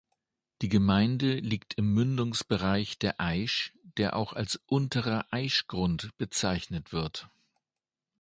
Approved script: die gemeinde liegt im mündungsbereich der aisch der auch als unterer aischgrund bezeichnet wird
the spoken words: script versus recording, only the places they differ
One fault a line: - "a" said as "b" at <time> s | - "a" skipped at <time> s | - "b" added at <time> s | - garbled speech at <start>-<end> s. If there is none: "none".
none